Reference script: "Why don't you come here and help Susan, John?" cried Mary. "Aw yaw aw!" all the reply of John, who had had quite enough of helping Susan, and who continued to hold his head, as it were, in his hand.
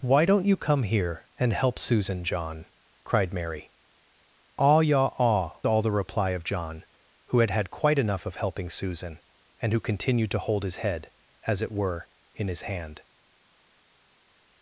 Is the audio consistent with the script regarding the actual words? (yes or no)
yes